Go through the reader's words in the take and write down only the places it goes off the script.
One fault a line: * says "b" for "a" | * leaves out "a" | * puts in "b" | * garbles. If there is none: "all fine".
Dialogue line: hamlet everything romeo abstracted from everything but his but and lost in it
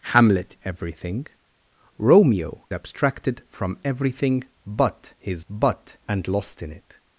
all fine